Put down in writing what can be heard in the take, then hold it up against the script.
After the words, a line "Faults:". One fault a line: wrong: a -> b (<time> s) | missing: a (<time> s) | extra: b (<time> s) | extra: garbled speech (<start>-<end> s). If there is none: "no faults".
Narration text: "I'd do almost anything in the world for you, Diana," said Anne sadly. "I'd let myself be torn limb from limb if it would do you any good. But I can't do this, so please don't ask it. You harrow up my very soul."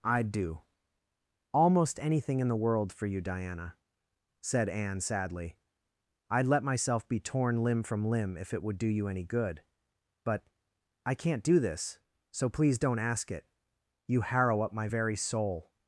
"I'd do almost anything in the world for you, Diana," said Anne sadly. "I'd let myself be torn limb from limb if it would do you any good. But I can't do this, so please don't ask it. You harrow up my very soul."
Faults:
no faults